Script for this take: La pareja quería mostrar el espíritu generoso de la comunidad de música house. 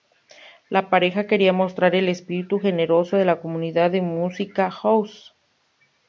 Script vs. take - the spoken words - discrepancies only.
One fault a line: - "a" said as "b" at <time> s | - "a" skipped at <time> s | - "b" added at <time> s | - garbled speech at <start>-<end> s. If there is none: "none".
none